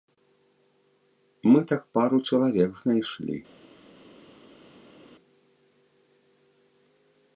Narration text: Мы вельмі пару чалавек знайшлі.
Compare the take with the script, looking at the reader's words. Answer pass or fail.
fail